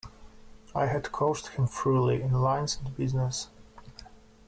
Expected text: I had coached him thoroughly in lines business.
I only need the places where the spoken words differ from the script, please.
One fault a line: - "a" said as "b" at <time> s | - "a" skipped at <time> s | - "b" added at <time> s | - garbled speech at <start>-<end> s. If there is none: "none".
- "and" added at 2.8 s